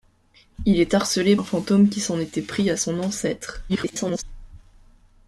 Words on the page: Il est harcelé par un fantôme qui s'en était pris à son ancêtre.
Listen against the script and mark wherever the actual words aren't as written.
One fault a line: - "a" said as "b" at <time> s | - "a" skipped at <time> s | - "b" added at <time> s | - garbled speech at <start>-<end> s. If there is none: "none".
- "par" skipped at 1.4 s
- garbled speech at 3.7-4.2 s